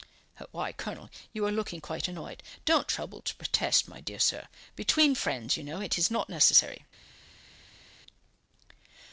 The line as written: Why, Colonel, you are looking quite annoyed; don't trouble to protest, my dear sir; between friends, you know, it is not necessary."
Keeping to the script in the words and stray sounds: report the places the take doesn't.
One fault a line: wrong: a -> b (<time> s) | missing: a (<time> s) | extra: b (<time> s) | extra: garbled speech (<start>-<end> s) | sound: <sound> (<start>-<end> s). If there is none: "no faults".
no faults